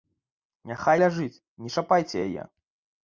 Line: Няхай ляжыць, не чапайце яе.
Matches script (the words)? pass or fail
pass